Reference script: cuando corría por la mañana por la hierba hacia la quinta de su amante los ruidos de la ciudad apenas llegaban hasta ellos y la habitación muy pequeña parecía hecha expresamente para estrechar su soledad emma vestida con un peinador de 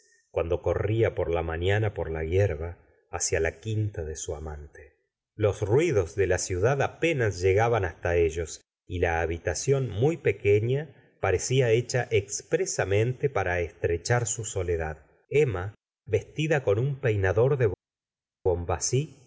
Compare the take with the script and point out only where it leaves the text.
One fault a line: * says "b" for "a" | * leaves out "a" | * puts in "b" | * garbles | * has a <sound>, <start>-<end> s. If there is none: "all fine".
all fine